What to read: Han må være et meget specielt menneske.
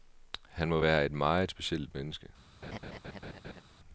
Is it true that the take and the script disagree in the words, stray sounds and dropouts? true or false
true